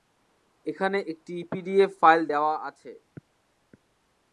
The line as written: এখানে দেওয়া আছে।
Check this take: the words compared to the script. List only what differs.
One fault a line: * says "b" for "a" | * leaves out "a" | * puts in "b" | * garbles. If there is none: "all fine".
* puts in "একটি পিডিএফ ফাইল"